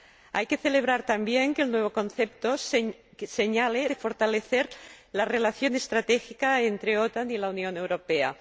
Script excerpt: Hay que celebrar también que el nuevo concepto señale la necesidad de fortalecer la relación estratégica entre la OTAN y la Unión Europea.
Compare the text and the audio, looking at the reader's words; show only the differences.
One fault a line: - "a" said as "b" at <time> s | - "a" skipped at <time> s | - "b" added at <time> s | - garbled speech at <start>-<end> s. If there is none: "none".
- "la necesidad" skipped at 3.9 s